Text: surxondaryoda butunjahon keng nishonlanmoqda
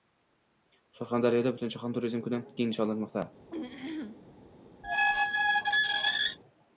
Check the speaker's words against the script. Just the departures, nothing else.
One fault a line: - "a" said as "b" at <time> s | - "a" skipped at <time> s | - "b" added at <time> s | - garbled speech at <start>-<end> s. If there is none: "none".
- "turizm kuni" added at 2.0 s